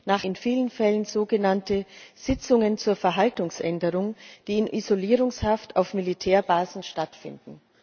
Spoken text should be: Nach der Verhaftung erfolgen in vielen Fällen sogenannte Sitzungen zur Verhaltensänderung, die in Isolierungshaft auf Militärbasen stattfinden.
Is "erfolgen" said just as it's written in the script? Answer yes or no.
no